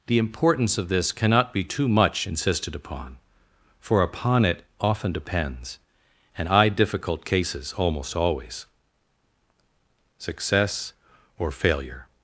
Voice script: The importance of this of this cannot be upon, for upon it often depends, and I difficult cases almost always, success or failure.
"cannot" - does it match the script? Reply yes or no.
no